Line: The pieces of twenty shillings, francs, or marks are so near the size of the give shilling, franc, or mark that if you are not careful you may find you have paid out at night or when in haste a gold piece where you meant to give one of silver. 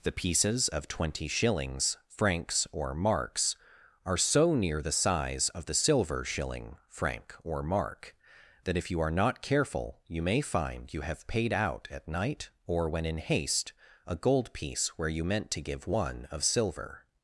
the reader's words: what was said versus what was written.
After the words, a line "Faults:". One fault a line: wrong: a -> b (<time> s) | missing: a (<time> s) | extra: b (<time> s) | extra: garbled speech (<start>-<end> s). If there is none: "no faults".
The pieces of twenty shillings, francs, or marks are so near the size of the silver shilling, franc, or mark that if you are not careful you may find you have paid out at night or when in haste a gold piece where you meant to give one of silver.
Faults:
wrong: give -> silver (5.8 s)